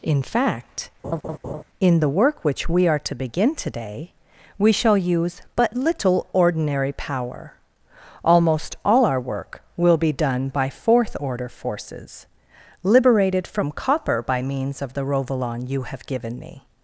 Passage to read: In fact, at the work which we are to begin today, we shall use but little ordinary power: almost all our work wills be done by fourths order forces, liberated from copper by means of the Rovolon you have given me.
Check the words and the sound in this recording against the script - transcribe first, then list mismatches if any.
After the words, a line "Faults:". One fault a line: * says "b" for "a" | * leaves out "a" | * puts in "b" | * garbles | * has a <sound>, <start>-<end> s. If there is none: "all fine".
In fact, in the work which we are to begin today, we shall use but little ordinary power: almost all our work will be done by fourth order forces, liberated from copper by means of the Rovolon you have given me.
Faults:
* has a laugh, 1.0-1.6 s
* says "in" for "at"
* says "will" for "wills"
* says "fourth" for "fourths"